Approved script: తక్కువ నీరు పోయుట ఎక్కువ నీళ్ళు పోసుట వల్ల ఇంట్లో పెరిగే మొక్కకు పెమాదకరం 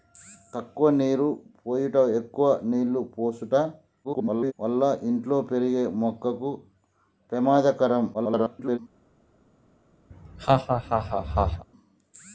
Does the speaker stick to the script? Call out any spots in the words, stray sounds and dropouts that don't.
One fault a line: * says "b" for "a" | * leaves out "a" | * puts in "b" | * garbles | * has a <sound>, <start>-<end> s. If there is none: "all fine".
* garbles
* garbles
* has a laugh, 10.1-11.7 s